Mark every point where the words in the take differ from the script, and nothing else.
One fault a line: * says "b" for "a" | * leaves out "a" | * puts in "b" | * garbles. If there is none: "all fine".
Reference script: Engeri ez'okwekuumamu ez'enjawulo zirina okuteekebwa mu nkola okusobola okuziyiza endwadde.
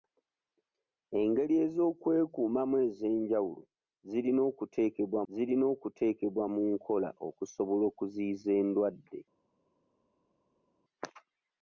* puts in "zirina okuteekebwa"